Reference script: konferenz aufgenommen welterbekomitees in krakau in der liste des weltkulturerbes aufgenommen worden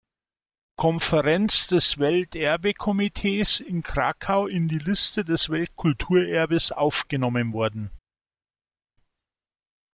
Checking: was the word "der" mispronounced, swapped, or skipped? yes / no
yes